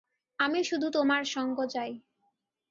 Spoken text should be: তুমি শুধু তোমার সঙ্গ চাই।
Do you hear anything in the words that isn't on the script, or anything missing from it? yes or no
yes